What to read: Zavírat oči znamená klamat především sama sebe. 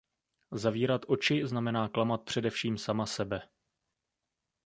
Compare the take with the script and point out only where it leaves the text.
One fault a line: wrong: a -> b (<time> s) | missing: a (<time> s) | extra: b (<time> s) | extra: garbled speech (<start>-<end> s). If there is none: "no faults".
no faults